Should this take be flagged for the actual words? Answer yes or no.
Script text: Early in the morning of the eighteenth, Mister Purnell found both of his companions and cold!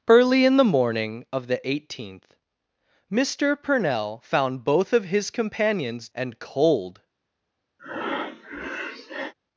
no